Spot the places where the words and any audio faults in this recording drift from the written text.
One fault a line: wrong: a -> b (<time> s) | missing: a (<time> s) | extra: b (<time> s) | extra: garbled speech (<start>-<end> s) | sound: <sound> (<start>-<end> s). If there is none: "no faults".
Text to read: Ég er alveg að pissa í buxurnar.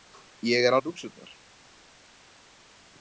missing: alveg að pissa (0.8 s)